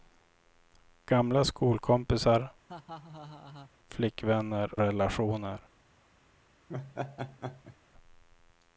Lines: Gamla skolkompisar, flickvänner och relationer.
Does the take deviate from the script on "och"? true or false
true